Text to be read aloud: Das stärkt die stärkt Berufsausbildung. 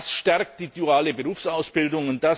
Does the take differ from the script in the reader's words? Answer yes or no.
yes